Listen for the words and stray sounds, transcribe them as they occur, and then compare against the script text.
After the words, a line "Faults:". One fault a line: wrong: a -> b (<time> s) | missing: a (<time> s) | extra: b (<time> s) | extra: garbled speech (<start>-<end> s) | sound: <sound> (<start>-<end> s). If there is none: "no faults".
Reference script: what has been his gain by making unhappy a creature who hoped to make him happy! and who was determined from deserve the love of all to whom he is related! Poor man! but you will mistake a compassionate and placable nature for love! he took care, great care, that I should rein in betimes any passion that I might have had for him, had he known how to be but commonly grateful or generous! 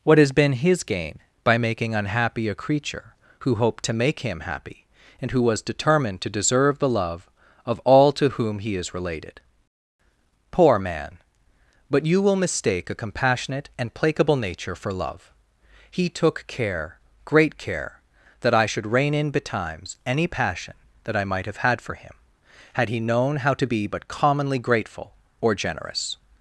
what has been his gain by making unhappy a creature who hoped to make him happy! and who was determined to deserve the love of all to whom he is related! Poor man! but you will mistake a compassionate and placable nature for love! he took care, great care, that I should rein in betimes any passion that I might have had for him, had he known how to be but commonly grateful or generous!
Faults:
wrong: from -> to (6.2 s)